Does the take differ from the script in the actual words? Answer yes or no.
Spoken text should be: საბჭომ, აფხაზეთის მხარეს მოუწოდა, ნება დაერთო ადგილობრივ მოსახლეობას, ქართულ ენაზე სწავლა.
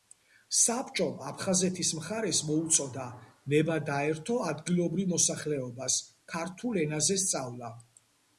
no